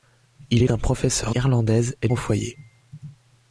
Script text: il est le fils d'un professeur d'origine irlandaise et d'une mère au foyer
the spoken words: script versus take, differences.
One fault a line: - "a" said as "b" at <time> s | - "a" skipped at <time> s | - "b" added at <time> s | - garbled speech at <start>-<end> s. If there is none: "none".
- "le fils" skipped at 0.7 s
- "d'origine" skipped at 1.4 s
- "d'une mère" skipped at 2.1 s